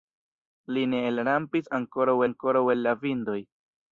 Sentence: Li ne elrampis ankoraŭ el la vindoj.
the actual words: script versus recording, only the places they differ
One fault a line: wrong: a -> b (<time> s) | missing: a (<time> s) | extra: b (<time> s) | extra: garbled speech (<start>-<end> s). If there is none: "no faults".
extra: ankoraŭ (2.3 s)